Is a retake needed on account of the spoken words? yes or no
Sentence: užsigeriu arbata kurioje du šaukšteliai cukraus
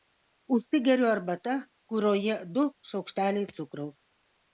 no